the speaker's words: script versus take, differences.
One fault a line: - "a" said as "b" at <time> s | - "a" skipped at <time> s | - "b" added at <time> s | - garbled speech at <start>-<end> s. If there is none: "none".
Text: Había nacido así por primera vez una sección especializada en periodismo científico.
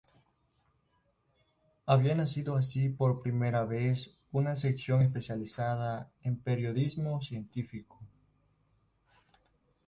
none